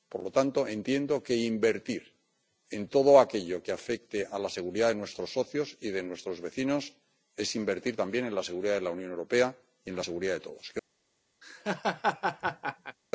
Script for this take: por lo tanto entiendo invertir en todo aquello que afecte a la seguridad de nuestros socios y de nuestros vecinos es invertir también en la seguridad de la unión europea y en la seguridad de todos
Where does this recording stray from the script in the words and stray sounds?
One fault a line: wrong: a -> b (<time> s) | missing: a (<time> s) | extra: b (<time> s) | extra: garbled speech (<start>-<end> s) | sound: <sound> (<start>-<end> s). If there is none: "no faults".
extra: que (1.2 s)
sound: laugh (11.4-13.0 s)